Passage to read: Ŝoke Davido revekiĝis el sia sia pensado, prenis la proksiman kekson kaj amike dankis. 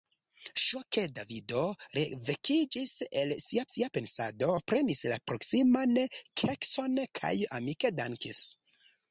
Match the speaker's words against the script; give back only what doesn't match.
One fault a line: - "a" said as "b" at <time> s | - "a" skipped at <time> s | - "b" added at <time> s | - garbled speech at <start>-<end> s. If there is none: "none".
none